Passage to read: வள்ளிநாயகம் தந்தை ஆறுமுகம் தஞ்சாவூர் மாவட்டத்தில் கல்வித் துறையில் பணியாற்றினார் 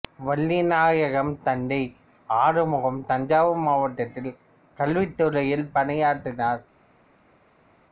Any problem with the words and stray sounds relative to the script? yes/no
no